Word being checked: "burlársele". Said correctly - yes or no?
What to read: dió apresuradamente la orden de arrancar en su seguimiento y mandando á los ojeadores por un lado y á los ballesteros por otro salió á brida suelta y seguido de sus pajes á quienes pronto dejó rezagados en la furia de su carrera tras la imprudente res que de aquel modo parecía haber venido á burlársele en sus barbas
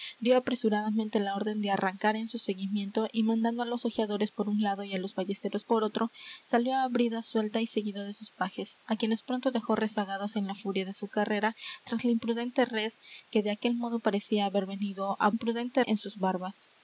no